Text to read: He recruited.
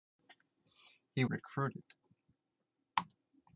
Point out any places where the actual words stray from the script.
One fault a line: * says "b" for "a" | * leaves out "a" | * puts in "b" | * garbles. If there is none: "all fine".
all fine